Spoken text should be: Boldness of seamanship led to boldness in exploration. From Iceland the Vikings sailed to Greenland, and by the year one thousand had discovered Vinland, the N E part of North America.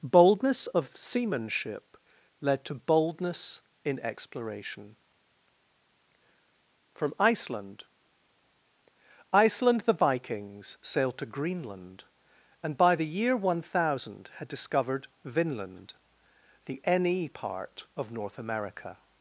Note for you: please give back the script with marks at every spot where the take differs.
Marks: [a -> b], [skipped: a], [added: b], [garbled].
Boldness of seamanship led to boldness in exploration. From Iceland [added: Iceland] the Vikings sailed to Greenland, and by the year one thousand had discovered Vinland, the N E part of North America.